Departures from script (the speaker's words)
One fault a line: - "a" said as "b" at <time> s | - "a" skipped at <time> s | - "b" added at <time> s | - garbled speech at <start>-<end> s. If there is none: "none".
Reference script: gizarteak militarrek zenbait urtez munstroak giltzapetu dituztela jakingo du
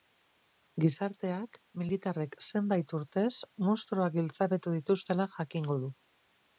none